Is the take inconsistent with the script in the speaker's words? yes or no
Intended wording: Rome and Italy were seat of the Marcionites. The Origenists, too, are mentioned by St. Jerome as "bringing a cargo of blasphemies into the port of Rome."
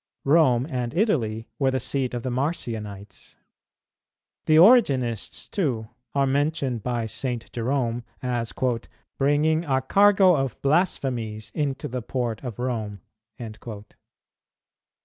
yes